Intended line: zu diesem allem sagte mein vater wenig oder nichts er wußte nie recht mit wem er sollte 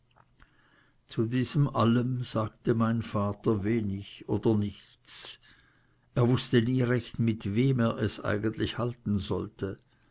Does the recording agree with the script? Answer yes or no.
no